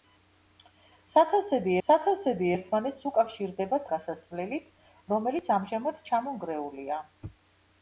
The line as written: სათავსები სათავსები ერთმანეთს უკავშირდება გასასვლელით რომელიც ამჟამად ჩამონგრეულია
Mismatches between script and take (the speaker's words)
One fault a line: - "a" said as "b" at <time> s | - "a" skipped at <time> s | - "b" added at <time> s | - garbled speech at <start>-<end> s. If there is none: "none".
none